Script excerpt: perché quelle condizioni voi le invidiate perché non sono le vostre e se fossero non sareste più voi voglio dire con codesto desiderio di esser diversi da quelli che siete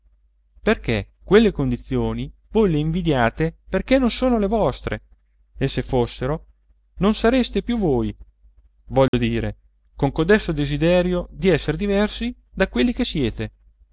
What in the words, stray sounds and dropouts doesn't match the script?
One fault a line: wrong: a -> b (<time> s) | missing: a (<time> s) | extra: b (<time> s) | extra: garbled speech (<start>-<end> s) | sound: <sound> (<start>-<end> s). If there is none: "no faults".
sound: dropout (9.1-9.1 s)